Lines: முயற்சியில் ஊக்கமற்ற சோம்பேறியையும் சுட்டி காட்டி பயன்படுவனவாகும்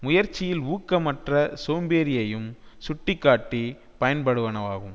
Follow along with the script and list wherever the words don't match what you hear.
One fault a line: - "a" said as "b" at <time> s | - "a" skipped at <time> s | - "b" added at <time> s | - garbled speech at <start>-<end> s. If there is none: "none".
none